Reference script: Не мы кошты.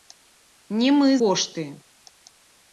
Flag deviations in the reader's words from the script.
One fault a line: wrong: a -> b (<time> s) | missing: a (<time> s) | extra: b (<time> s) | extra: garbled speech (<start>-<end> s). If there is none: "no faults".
no faults